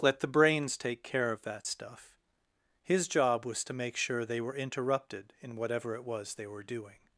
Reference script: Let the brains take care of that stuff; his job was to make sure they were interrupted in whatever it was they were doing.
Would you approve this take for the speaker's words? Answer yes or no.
yes